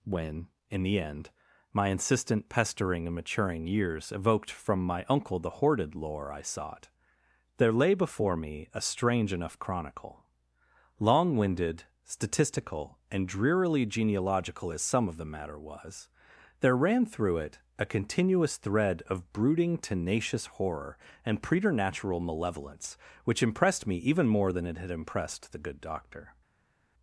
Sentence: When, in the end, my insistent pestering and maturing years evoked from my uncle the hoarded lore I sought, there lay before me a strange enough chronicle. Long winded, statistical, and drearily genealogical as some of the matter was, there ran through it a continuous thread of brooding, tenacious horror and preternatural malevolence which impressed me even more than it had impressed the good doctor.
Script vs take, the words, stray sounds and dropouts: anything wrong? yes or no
no